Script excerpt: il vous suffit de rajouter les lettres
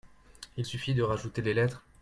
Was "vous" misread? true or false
true